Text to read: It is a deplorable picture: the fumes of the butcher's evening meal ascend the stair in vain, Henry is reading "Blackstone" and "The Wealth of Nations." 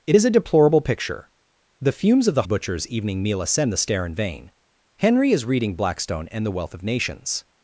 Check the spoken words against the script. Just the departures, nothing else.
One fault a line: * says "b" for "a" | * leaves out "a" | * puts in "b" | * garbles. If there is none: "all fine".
all fine